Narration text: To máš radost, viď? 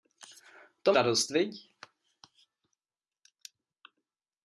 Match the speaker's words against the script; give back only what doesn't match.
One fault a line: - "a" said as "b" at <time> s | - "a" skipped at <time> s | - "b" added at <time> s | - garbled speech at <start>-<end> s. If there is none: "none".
- "máš" skipped at 0.9 s